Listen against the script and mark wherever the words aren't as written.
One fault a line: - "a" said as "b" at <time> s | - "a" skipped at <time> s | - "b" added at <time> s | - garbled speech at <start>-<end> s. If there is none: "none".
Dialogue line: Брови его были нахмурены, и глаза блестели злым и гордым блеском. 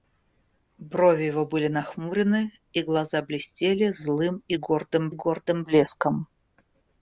- "гордым" added at 5.1 s